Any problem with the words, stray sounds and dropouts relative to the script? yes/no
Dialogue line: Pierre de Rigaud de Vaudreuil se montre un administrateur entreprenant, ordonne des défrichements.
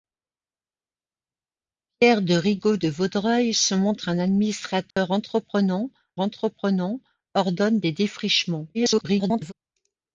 yes